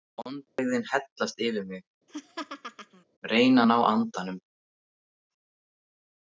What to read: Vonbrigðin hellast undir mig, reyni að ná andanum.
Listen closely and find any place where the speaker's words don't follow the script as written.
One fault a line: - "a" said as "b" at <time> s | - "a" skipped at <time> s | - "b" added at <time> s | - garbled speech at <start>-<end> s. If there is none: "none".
- "undir" said as "yfir" at 1.5 s